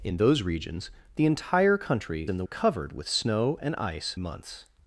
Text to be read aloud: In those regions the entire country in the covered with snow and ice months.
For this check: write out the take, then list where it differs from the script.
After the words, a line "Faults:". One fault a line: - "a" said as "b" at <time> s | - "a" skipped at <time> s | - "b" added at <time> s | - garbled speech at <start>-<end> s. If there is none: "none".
In those regions the entire country in the covered with snow and ice months.
Faults:
none